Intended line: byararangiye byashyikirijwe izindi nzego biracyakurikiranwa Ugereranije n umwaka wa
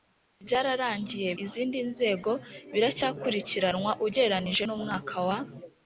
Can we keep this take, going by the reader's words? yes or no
no